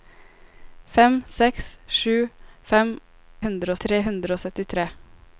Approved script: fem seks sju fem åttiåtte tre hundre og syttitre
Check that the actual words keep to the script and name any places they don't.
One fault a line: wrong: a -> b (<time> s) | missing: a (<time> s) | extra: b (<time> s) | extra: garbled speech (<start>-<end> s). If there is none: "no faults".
wrong: åttiåtte -> hundre (3.5 s)